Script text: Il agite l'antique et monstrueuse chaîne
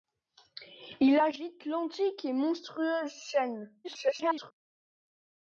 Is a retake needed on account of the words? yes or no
yes